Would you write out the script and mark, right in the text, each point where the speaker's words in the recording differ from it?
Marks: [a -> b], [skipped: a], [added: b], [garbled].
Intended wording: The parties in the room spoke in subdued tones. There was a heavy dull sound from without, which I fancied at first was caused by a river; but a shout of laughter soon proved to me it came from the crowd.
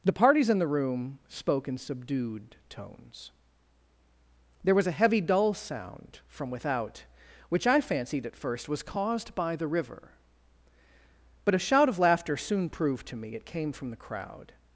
The parties in the room spoke in subdued tones. There was a heavy dull sound from without, which I fancied at first was caused by [a -> the] river; but a shout of laughter soon proved to me it came from the crowd.